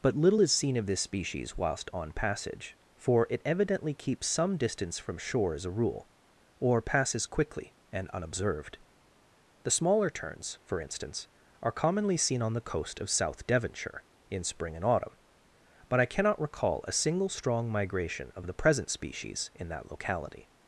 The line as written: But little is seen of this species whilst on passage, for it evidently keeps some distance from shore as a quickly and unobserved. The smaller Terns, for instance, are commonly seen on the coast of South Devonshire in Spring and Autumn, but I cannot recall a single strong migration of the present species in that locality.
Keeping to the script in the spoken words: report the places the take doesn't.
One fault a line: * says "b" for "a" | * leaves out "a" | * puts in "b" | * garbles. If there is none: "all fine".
* puts in "rule or passes"